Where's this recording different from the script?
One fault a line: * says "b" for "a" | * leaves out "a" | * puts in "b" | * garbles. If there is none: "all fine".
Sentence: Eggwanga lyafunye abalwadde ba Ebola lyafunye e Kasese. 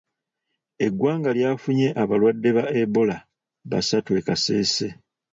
* says "basatu" for "lyafunye"